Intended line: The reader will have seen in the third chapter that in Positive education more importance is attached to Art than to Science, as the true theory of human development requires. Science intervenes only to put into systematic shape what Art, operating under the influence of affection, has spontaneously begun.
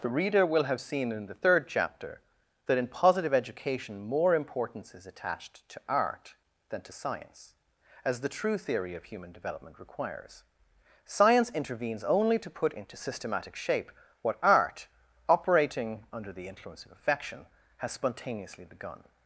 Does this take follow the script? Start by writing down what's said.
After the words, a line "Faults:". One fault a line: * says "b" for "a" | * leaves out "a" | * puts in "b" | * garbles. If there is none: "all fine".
The reader will have seen in the third chapter that in Positive education more importance is attached to Art than to Science, as the true theory of human development requires. Science intervenes only to put into systematic shape what Art, operating under the influence of affection, has spontaneously begun.
Faults:
all fine